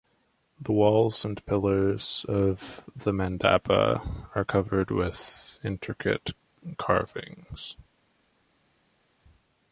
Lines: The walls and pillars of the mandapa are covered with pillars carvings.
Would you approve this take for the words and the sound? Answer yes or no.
no